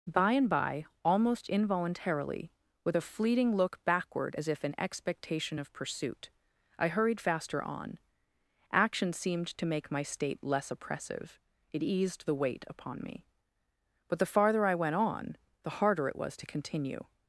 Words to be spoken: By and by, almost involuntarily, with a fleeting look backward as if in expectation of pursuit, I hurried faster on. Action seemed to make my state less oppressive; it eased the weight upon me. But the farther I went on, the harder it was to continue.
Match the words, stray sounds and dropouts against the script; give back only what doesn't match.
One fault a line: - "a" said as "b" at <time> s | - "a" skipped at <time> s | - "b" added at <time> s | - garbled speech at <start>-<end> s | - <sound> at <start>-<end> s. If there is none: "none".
none